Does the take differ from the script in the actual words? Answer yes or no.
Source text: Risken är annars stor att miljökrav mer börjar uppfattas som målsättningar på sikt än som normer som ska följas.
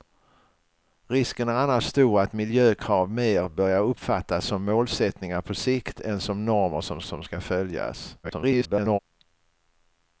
yes